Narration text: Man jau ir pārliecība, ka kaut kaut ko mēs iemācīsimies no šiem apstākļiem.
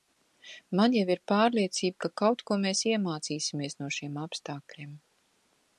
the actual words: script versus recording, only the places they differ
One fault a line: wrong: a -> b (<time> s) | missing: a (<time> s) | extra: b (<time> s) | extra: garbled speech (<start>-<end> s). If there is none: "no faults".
missing: kaut (2.4 s)